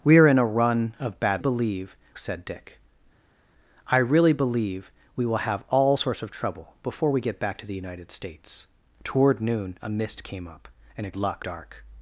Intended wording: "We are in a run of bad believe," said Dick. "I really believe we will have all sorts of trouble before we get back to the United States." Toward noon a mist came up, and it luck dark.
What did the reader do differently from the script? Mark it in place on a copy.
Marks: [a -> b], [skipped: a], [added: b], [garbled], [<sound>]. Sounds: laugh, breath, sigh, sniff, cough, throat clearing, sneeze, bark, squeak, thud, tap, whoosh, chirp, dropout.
"We are in a run of bad believe," said Dick. "I really believe we will have all sorts of trouble before we get back to the United States." Toward noon a mist came up, and it luck dark.